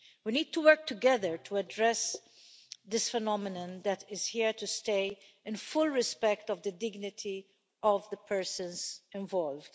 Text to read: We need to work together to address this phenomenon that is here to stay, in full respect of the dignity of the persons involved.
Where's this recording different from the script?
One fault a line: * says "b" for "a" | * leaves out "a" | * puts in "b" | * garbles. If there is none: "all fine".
all fine